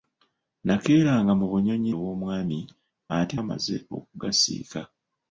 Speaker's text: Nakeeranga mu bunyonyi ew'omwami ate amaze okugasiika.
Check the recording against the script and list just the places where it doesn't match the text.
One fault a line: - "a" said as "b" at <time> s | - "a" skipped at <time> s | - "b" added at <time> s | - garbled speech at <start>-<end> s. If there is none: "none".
none